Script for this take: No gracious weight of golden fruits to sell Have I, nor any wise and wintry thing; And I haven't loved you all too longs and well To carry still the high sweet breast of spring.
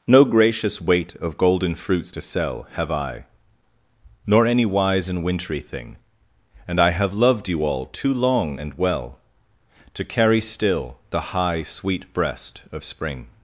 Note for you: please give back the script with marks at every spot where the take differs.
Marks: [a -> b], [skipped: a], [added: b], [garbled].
No gracious weight of golden fruits to sell Have I, nor any wise and wintry thing; And I [haven't -> have] loved you all too [longs -> long] and well To carry still the high sweet breast of spring.